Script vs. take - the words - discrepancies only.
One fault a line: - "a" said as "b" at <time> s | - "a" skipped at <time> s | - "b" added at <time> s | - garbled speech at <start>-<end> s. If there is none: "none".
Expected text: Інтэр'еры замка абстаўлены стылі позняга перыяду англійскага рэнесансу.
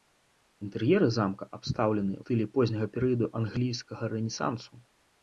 none